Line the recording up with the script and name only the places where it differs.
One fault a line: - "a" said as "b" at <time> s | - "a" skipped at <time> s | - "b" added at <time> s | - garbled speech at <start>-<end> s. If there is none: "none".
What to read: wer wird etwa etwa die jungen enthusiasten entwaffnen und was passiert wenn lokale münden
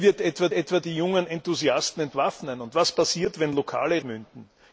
none